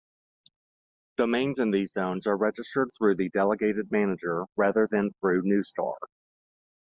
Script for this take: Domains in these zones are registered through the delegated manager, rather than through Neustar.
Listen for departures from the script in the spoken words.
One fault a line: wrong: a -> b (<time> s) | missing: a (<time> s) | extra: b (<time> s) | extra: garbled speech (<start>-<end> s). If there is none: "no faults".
no faults